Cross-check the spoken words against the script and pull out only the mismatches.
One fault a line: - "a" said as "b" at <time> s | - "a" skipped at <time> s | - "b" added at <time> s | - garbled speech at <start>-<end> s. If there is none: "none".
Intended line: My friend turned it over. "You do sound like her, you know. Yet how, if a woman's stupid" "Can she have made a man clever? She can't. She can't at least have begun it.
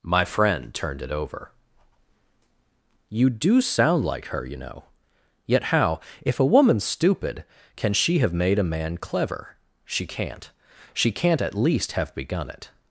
none